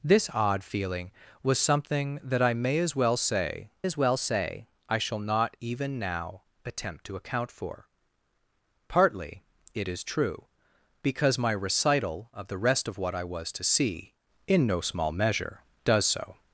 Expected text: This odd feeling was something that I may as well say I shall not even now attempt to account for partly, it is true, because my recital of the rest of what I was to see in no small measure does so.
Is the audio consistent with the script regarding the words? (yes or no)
no